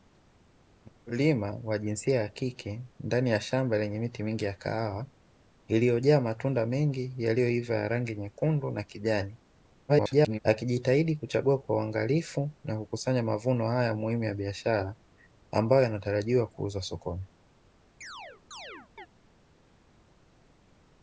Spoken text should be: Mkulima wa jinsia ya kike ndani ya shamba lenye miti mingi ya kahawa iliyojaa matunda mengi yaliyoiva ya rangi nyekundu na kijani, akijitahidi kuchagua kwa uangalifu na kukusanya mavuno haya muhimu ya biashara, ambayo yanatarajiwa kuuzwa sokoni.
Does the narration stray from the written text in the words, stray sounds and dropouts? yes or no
yes